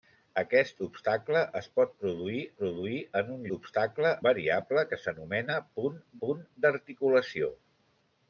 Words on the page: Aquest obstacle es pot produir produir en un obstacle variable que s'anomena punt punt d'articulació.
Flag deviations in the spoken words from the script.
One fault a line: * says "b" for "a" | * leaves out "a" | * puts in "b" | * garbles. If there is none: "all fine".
all fine